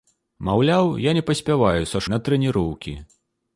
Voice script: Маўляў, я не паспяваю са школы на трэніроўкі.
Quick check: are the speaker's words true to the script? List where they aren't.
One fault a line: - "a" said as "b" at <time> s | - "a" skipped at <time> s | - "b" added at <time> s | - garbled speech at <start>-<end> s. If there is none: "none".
- "школы" skipped at 2.0 s